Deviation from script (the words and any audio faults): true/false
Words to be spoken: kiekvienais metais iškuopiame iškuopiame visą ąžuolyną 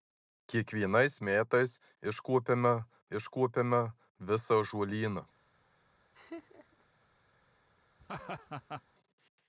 true